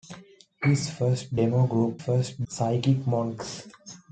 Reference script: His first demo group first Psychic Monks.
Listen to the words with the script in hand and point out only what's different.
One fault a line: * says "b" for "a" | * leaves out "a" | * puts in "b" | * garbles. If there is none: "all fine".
all fine